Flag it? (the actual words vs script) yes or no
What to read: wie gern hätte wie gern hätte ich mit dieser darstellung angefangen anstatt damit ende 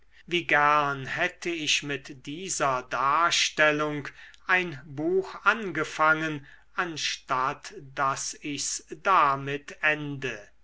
yes